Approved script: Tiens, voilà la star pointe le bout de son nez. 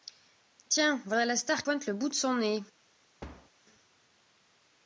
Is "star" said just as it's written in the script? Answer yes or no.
yes